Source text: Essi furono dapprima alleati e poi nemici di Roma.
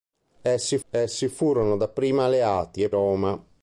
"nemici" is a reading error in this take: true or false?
true